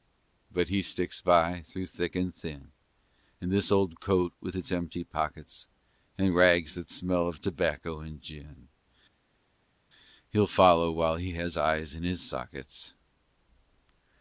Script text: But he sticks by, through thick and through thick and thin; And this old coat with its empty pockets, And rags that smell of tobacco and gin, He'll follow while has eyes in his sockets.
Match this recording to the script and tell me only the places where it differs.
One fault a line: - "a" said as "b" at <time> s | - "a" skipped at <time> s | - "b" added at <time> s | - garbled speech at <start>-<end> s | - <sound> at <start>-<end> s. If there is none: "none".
- "through thick and" skipped at 2.3 s
- "he" added at 11.2 s